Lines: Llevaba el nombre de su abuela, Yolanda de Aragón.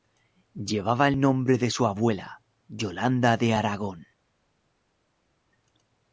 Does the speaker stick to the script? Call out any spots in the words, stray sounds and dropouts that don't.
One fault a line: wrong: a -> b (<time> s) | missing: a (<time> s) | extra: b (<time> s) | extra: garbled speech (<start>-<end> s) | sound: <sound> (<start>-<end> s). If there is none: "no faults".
no faults